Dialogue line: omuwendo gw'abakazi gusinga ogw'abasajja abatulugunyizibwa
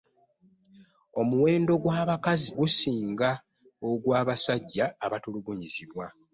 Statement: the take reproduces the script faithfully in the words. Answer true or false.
true